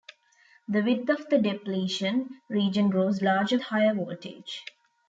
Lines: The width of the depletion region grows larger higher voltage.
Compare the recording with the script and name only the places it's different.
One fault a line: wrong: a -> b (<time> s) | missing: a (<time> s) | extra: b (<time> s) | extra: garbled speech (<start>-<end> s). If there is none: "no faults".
no faults